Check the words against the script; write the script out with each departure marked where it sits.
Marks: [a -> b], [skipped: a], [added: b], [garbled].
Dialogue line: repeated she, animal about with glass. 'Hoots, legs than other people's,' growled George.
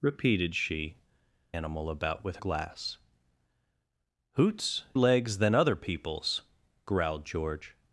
repeated she, animal about with glass. 'Hoots, legs than other people's,' growled George.